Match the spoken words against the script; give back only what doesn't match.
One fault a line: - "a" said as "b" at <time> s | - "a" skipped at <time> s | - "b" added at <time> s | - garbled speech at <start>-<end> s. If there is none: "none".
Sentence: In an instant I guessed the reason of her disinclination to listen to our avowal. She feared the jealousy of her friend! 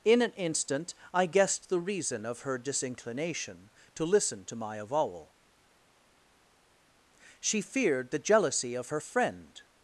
- "our" said as "my" at 4.5 s